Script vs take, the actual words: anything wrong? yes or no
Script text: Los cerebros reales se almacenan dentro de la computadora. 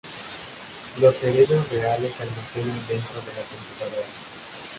no